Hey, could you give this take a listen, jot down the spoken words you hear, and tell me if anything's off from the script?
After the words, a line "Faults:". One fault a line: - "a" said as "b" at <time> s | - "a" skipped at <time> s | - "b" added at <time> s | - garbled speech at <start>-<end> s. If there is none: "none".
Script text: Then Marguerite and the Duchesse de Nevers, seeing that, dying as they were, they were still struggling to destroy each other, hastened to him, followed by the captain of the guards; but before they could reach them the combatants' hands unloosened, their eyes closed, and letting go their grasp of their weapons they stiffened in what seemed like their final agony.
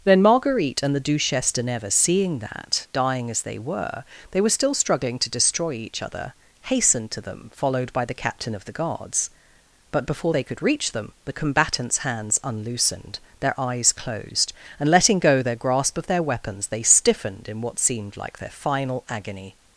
Then Marguerite and the Duchesse de Nevers, seeing that, dying as they were, they were still struggling to destroy each other, hastened to them, followed by the captain of the guards; but before they could reach them the combatants' hands unloosened, their eyes closed, and letting go their grasp of their weapons they stiffened in what seemed like their final agony.
Faults:
- "him" said as "them" at 7.2 s